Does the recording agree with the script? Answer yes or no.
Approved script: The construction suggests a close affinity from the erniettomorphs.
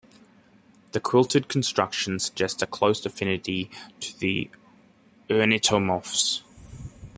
no